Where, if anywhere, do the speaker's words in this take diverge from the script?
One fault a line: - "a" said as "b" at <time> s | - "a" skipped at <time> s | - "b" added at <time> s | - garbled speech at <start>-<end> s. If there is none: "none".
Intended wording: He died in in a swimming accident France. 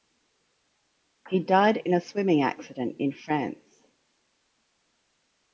- "in" skipped at 1.9 s
- "in" added at 3.0 s